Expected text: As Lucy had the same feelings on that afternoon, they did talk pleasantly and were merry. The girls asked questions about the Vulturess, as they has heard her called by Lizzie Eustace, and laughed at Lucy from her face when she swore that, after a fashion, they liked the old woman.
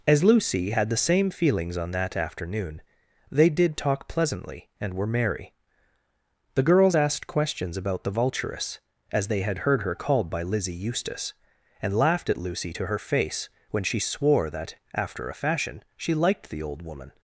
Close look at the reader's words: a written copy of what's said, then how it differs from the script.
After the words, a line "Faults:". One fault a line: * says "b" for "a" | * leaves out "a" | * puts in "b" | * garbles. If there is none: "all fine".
As Lucy had the same feelings on that afternoon, they did talk pleasantly and were merry. The girls asked questions about the Vulturess, as they had heard her called by Lizzie Eustace, and laughed at Lucy to her face when she swore that, after a fashion, she liked the old woman.
Faults:
* says "had" for "has"
* says "to" for "from"
* says "she" for "they"